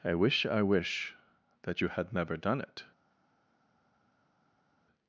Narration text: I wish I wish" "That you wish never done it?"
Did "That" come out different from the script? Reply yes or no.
no